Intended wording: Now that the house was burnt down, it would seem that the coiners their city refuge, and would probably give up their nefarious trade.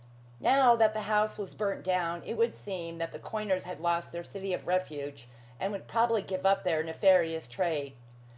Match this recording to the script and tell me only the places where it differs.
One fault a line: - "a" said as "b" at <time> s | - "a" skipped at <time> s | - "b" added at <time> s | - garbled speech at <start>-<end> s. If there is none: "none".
- "had lost" added at 3.7 s
- "of" added at 4.5 s